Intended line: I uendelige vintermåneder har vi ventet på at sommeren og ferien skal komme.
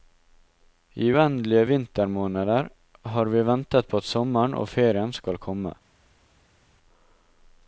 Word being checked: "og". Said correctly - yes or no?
yes